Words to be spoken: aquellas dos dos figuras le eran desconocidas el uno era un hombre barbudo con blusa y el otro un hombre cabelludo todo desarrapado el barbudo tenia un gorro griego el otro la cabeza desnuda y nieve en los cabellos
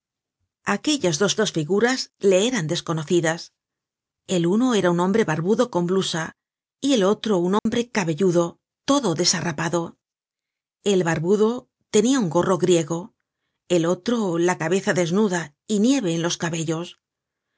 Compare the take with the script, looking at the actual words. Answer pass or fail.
pass